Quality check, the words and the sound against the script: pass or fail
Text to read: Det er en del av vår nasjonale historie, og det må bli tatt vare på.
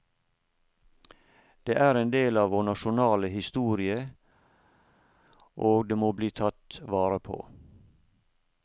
pass